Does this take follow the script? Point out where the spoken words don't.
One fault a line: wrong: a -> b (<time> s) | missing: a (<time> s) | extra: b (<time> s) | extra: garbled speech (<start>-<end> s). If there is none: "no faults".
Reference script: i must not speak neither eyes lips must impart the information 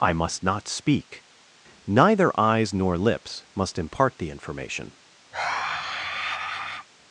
extra: nor (2.7 s)